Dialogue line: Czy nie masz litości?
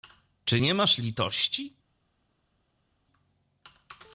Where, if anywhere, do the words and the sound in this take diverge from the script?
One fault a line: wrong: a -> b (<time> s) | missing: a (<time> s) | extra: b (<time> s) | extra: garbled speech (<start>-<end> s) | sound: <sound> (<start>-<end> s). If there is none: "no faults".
no faults